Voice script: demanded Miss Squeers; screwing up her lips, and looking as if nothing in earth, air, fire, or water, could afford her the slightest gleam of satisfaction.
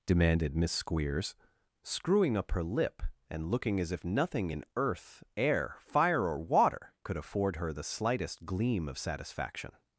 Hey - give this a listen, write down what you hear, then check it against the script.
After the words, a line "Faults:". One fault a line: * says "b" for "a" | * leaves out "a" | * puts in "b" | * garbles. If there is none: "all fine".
demanded Miss Squeers; screwing up her lip, and looking as if nothing in earth, air, fire, or water, could afford her the slightest gleam of satisfaction.
Faults:
* says "lip" for "lips"